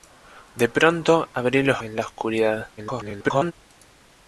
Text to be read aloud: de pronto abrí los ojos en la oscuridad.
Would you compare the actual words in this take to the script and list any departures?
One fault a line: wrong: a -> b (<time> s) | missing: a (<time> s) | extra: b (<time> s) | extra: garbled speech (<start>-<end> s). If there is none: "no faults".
missing: ojos (1.8 s)
extra: garbled speech (2.8-3.5 s)